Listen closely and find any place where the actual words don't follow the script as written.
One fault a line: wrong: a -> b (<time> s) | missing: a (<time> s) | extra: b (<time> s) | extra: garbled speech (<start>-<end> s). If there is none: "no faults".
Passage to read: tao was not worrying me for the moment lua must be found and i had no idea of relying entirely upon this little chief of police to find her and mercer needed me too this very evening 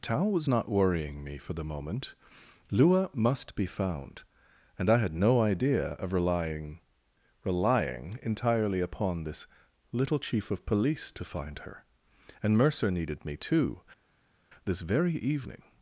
extra: relying (7.4 s)